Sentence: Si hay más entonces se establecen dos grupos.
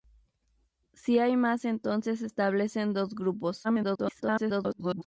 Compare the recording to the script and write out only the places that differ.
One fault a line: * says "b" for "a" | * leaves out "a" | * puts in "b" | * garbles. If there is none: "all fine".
* garbles